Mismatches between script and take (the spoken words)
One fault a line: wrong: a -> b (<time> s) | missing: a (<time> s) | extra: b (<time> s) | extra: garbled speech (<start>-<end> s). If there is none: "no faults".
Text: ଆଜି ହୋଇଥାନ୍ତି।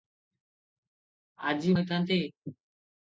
no faults